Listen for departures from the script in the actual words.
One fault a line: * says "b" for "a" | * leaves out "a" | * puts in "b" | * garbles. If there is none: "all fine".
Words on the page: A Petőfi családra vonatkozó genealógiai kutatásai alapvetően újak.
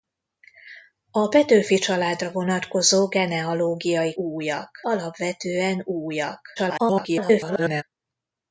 * says "újak" for "kutatásai"
* garbles